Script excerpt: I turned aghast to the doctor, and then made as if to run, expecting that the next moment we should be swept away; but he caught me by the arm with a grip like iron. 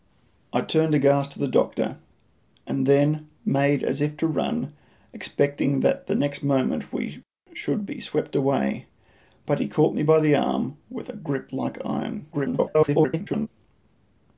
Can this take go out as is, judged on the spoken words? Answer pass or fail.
fail